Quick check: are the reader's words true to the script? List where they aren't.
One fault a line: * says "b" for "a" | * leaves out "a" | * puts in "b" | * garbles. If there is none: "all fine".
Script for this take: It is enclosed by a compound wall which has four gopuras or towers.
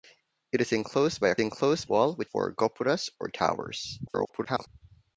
* says "enclosed" for "compound"
* leaves out "has"
* garbles